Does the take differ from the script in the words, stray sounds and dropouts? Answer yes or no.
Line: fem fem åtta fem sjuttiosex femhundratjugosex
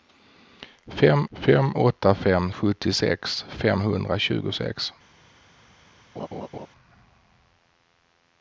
yes